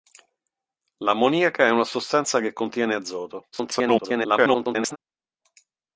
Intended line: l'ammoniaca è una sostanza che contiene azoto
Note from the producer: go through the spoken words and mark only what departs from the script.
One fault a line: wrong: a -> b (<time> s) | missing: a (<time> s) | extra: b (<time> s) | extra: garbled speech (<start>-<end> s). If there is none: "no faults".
extra: garbled speech (3.5-5.0 s)